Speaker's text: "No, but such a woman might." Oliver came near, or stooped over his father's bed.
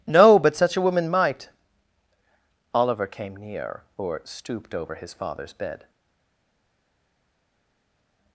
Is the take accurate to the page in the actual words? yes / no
yes